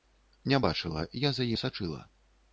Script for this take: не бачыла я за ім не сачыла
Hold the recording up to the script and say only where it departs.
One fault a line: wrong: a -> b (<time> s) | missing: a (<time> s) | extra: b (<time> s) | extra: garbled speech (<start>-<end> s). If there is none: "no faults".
missing: ім (1.5 s)